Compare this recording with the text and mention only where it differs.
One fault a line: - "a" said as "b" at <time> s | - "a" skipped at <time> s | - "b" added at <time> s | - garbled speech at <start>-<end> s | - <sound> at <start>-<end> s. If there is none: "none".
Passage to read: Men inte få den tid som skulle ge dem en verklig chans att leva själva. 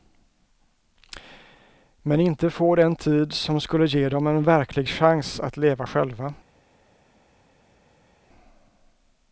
none